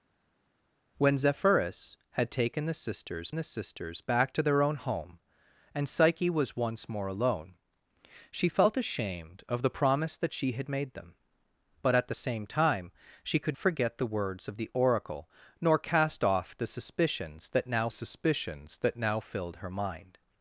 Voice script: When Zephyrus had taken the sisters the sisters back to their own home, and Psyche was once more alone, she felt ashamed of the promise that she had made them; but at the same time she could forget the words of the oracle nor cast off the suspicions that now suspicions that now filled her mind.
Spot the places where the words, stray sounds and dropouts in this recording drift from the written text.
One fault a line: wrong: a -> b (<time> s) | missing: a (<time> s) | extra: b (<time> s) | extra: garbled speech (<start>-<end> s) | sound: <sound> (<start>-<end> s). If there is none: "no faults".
no faults